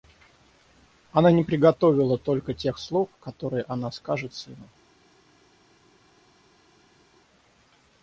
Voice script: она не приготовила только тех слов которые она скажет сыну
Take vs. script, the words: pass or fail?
pass